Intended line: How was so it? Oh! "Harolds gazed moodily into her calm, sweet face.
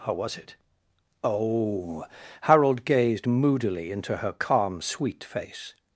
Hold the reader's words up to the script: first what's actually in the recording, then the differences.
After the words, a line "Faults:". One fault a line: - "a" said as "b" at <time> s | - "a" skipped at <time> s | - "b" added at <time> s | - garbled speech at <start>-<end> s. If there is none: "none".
How was it? Oh! "Harold gazed moodily into her calm, sweet face.
Faults:
- "so" skipped at 0.3 s
- "Harolds" said as "Harold" at 2.4 s